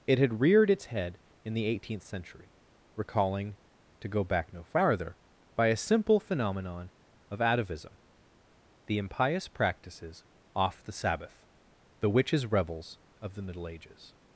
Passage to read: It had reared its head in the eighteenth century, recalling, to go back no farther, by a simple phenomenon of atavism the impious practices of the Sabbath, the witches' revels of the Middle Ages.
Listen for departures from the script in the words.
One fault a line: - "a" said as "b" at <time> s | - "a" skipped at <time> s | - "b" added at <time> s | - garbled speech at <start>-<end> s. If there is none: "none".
- "of" said as "off" at 10.6 s